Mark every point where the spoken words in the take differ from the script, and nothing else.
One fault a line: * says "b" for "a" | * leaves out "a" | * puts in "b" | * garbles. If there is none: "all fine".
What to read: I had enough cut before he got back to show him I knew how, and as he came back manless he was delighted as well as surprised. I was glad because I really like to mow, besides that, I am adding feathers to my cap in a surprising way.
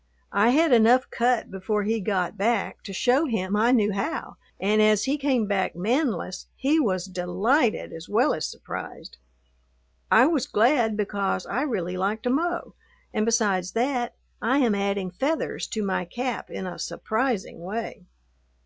* puts in "and"